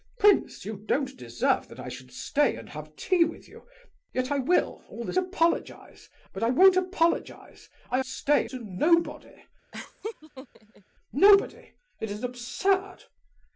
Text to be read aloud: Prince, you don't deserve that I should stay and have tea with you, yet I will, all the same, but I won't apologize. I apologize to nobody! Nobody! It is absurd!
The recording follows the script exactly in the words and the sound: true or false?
false